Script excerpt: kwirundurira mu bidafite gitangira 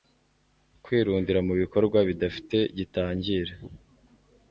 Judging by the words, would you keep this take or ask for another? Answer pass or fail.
fail